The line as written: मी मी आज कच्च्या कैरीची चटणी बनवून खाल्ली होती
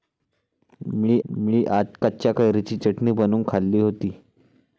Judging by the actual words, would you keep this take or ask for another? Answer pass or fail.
pass